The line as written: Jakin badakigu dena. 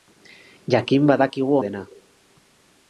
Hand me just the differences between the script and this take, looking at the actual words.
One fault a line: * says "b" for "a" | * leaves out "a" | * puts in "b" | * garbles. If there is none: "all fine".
all fine